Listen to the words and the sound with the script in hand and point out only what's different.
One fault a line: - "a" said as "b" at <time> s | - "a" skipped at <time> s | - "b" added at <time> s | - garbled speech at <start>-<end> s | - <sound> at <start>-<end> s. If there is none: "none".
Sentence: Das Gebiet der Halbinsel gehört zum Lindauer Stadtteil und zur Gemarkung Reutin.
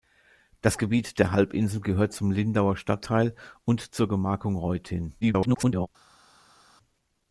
- garbled speech at 5.2-5.9 s